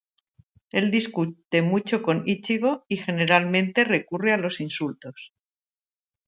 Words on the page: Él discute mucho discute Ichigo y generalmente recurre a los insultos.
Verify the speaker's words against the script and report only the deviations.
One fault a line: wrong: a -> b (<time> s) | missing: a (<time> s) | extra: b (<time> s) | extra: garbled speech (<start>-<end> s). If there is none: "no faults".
wrong: discute -> con (2.0 s)